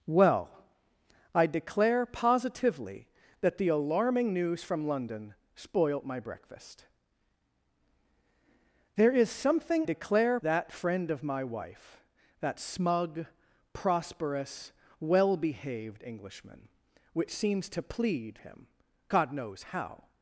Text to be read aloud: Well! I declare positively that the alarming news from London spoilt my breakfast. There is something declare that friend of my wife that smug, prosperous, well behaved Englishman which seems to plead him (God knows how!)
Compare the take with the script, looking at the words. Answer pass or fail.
pass